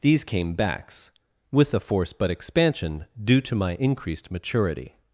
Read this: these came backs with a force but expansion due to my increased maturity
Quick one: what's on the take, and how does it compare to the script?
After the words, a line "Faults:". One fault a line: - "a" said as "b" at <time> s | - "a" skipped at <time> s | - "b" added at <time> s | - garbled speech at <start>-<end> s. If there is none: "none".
these came backs with a force but expansion due to my increased maturity
Faults:
none